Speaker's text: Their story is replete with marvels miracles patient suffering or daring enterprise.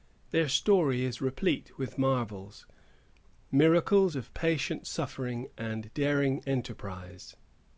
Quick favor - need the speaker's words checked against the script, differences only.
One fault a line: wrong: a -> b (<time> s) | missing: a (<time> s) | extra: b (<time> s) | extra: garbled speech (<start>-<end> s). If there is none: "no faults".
extra: of (4.2 s)
wrong: or -> and (5.6 s)